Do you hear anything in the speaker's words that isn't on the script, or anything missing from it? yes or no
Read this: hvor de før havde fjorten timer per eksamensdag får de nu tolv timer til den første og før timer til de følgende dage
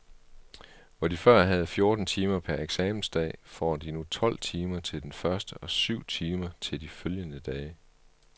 yes